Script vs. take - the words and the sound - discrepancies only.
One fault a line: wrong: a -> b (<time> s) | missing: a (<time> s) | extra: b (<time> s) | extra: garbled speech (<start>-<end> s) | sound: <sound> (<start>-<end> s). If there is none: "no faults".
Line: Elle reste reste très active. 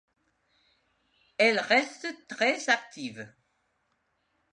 missing: reste (2.1 s)